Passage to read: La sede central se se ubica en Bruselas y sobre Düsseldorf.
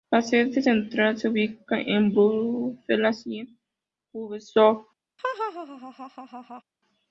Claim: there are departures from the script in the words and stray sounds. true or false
true